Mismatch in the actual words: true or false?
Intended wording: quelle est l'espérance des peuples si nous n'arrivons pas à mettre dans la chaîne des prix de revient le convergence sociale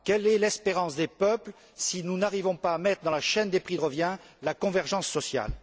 true